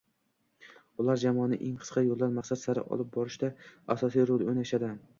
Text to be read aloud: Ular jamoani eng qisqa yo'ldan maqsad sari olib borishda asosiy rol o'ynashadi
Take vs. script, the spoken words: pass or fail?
pass